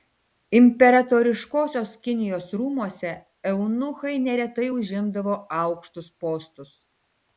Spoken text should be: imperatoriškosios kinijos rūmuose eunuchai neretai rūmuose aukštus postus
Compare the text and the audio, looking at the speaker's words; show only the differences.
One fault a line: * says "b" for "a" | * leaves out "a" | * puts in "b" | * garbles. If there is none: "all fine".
* says "užimdavo" for "rūmuose"